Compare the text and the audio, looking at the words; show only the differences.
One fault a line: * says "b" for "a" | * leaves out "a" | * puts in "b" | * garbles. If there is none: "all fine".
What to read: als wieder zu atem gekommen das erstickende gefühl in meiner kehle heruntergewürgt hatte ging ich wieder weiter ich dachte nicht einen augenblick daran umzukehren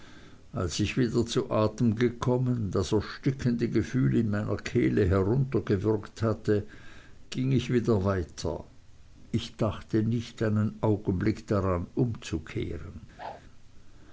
* puts in "ich"